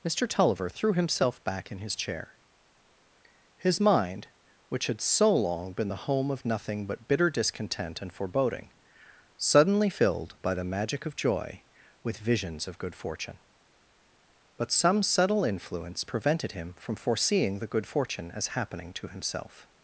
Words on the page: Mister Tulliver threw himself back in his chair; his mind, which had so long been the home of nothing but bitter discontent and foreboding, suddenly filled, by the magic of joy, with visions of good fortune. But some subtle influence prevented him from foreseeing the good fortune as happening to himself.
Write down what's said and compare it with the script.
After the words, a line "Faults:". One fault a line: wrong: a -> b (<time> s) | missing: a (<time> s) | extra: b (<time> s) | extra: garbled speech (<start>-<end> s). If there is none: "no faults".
Mister Tulliver threw himself back in his chair; his mind, which had so long been the home of nothing but bitter discontent and foreboding, suddenly filled, by the magic of joy, with visions of good fortune. But some subtle influence prevented him from foreseeing the good fortune as happening to himself.
Faults:
no faults